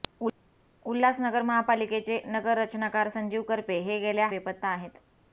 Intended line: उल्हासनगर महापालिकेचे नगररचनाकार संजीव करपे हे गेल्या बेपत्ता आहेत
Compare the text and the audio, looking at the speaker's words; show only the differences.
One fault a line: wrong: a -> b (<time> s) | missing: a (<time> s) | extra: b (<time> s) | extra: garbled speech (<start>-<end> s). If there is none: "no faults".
no faults